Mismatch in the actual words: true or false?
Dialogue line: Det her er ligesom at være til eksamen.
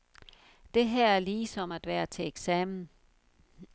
false